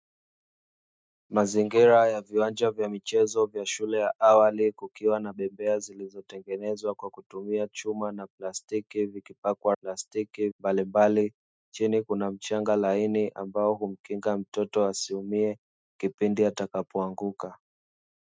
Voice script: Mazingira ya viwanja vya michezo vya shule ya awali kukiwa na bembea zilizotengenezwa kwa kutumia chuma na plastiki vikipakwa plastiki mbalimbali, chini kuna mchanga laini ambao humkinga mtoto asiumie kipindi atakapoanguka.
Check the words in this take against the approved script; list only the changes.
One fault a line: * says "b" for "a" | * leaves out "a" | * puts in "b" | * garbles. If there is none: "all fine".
all fine